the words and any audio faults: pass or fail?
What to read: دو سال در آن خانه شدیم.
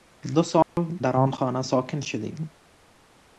fail